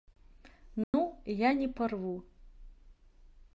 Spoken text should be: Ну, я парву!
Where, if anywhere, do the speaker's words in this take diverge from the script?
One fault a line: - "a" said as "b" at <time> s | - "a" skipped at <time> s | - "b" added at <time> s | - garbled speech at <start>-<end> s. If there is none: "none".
- "не" added at 1.5 s